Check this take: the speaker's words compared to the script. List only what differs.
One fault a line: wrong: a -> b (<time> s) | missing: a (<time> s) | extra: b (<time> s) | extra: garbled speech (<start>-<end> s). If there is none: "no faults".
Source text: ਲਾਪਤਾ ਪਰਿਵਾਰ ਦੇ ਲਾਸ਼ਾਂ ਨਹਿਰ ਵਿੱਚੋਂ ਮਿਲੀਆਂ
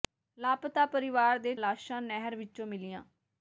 no faults